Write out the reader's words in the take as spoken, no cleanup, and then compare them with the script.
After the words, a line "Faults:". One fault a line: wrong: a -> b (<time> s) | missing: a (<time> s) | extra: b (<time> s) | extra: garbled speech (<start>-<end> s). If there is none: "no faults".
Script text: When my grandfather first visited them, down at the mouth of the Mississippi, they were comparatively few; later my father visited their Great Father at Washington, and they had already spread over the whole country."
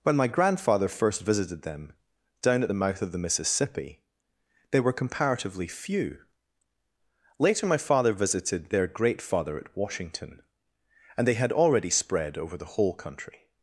When my grandfather first visited them, down at the mouth of the Mississippi, they were comparatively few; later my father visited their Great Father at Washington, and they had already spread over the whole country."
Faults:
no faults